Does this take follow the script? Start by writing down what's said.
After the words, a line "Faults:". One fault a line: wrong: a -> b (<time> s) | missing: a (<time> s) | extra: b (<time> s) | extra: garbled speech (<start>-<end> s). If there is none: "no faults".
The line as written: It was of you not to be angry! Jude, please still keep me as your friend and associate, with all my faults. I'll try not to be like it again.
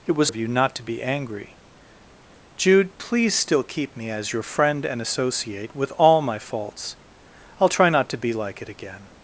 It was of you not to be angry! Jude, please still keep me as your friend and associate, with all my faults. I'll try not to be like it again.
Faults:
no faults